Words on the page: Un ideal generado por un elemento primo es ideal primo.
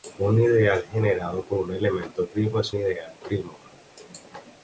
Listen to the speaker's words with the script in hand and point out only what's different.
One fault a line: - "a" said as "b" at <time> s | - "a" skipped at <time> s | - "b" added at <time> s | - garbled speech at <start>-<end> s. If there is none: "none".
none